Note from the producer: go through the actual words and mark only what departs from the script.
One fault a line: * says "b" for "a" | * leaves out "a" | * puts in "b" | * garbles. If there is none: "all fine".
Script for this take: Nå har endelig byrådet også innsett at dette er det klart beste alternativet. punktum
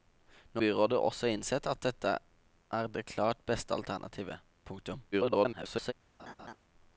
* leaves out "har endelig"
* garbles